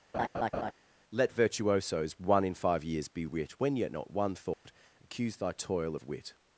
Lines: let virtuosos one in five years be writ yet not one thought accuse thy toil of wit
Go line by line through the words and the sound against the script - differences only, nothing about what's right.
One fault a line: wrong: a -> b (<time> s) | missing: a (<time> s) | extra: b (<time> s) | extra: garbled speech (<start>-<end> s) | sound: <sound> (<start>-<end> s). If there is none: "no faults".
sound: laugh (0.1-0.7 s)
wrong: writ -> wit when (3.2 s)
sound: dropout (4.5-4.7 s)